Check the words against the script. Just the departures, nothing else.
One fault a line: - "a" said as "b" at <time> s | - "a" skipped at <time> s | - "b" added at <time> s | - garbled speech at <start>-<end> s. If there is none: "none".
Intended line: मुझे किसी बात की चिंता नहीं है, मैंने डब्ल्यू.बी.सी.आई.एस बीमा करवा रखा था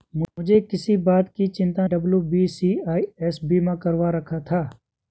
- "नहीं है मैंने" skipped at 1.9 s